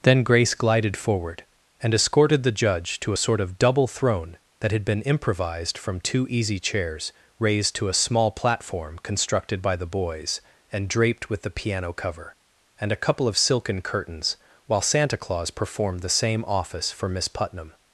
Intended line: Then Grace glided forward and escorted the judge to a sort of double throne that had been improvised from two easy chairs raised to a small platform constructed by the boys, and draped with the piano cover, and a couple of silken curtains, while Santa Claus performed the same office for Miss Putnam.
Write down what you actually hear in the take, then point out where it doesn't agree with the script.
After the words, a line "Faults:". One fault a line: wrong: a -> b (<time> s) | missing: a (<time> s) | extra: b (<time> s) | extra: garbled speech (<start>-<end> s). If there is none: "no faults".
Then Grace glided forward and escorted the judge to a sort of double throne that had been improvised from two easy chairs raised to a small platform constructed by the boys, and draped with the piano cover, and a couple of silken curtains, while Santa Claus performed the same office for Miss Putnam.
Faults:
no faults